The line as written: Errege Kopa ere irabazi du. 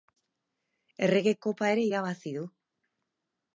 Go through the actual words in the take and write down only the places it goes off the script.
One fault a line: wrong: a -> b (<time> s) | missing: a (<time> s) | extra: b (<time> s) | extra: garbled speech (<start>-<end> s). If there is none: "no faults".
no faults